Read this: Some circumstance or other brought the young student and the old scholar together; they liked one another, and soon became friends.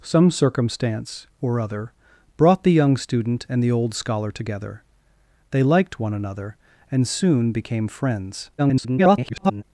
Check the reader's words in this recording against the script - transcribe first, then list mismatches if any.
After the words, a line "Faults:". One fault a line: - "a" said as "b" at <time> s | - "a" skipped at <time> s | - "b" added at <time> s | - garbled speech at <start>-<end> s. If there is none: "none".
Some circumstance or other brought the young student and the old scholar together; they liked one another, and soon became friends. [garbled]
Faults:
- garbled speech at 8.6-9.6 s